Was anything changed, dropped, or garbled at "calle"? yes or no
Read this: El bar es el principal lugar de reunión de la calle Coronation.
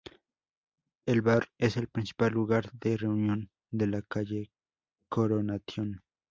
no